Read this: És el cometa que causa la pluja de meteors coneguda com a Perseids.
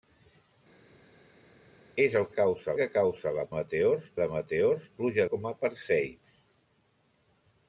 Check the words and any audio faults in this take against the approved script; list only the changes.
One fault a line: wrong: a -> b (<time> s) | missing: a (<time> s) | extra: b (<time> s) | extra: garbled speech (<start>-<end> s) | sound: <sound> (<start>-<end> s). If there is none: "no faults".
wrong: cometa -> causa (2.4 s)
wrong: pluja -> meteors (3.6 s)
wrong: coneguda -> pluja (5.0 s)